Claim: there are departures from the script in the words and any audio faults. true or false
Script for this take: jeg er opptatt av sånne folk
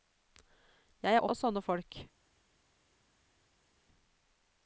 true